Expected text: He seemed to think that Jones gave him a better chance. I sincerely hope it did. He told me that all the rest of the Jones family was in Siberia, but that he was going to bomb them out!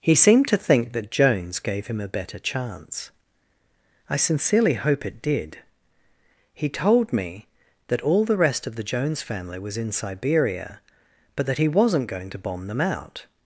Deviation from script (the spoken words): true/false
true